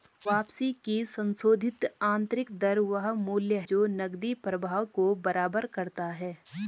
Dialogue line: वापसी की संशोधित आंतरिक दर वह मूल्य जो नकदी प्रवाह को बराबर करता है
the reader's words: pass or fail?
pass